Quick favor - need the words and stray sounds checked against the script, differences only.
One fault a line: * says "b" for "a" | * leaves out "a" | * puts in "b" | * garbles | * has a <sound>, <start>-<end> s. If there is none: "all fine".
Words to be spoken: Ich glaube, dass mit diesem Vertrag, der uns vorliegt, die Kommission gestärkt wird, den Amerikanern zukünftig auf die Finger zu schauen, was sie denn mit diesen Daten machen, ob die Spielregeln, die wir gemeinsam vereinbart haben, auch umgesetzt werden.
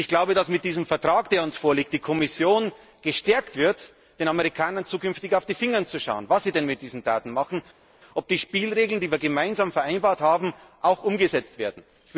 all fine